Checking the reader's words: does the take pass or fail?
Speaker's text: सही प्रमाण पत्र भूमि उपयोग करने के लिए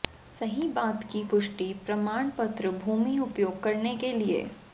fail